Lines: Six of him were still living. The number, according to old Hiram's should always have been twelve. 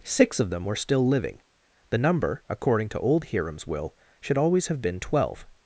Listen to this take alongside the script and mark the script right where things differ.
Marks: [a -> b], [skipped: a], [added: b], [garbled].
Six of [him -> them] were still living. The number, according to old Hiram's [added: will] should always have been twelve.